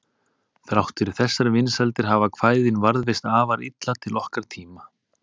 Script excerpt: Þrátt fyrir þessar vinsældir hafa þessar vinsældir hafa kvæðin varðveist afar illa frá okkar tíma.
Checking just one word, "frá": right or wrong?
wrong